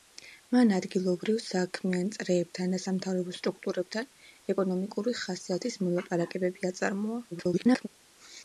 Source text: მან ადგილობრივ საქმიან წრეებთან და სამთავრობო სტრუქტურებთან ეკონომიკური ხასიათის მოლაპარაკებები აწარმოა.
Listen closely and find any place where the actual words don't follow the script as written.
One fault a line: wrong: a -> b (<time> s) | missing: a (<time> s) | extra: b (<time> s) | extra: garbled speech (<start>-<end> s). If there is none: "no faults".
extra: garbled speech (7.3-7.9 s)